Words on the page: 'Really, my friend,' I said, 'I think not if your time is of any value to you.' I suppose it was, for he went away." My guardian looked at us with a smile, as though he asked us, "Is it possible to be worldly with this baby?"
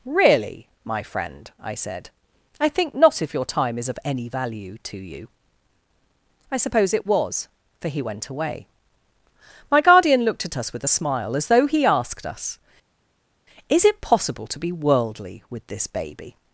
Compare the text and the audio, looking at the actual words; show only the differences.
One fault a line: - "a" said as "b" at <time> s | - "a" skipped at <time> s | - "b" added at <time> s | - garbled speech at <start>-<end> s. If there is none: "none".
none